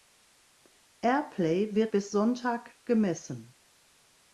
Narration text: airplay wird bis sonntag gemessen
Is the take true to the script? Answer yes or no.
yes